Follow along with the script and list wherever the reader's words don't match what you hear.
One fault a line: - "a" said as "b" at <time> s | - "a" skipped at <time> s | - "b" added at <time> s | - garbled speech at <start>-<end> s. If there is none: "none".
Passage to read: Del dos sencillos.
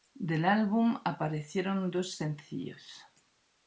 - "álbum aparecieron" added at 0.5 s